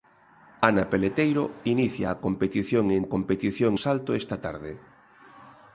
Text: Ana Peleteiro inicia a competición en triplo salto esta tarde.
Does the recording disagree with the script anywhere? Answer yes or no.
yes